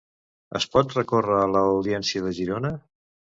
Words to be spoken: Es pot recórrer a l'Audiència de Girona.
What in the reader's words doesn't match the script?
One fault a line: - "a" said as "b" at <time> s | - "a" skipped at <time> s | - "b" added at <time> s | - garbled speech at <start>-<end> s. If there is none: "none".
none